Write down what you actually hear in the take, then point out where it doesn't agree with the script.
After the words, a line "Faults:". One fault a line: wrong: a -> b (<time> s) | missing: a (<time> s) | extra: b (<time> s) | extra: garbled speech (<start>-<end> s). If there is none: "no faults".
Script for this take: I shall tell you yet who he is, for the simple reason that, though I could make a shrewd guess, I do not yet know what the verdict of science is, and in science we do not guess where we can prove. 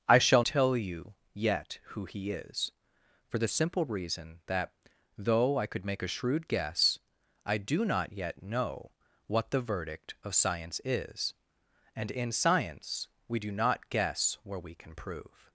I shall tell you yet who he is, for the simple reason that, though I could make a shrewd guess, I do not yet know what the verdict of science is, and in science we do not guess where we can prove.
Faults:
no faults